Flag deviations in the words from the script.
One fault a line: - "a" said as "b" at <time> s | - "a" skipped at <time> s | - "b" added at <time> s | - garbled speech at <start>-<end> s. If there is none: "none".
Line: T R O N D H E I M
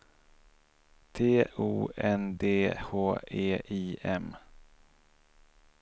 - "R" skipped at 1.4 s